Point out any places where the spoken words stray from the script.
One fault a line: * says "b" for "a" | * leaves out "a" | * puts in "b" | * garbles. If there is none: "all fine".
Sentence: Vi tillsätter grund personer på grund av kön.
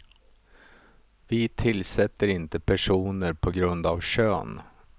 * says "inte" for "grund"